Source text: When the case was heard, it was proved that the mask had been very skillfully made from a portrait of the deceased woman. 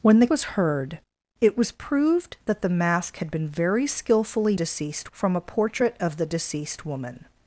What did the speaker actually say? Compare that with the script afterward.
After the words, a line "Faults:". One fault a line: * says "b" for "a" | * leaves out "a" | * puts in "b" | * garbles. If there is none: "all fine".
When the was heard, it was proved that the mask had been very skillfully deceased from a portrait of the deceased woman.
Faults:
* leaves out "case"
* says "deceased" for "made"